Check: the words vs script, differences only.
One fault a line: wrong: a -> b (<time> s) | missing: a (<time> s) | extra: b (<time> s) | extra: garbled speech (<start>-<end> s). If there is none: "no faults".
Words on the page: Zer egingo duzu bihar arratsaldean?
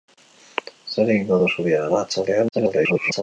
extra: garbled speech (2.5-3.2 s)